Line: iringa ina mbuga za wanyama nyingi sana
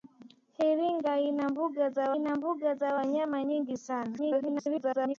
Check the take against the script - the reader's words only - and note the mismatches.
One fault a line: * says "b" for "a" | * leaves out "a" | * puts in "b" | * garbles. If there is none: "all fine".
* puts in "ina mbuga za"
* garbles